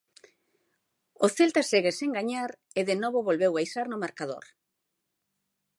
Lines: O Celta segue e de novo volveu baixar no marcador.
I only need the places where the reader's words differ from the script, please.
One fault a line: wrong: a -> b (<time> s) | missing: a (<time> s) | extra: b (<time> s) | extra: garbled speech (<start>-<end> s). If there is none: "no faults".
extra: sen gañar (2.0 s)